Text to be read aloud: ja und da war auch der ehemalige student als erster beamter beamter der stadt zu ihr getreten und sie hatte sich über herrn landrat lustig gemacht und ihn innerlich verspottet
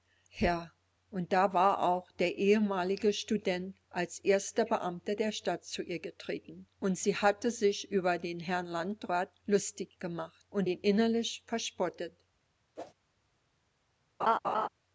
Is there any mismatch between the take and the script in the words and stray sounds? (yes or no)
yes